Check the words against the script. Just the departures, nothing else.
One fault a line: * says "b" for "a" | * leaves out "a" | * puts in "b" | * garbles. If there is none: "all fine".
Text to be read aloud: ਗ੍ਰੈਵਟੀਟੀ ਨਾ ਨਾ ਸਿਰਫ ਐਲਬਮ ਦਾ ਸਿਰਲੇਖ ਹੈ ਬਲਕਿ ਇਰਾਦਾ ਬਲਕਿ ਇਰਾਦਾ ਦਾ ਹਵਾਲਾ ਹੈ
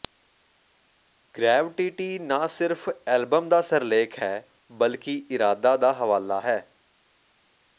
* leaves out "ਨਾ"
* leaves out "ਬਲਕਿ ਇਰਾਦਾ"